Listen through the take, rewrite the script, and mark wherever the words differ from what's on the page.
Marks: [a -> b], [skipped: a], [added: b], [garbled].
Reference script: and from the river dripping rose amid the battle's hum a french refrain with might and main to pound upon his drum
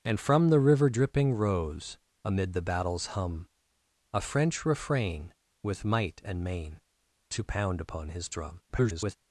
and from the river dripping rose amid the battle's hum a french refrain with might and main to pound upon his drum [garbled]